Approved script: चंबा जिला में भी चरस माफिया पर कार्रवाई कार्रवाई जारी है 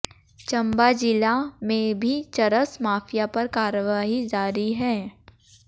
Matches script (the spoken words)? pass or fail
fail